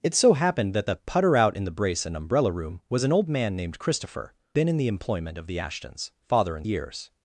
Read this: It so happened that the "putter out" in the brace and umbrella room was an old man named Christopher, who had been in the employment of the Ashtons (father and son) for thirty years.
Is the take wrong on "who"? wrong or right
wrong